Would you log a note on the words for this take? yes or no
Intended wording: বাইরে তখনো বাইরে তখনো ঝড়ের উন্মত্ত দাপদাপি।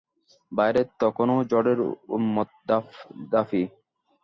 yes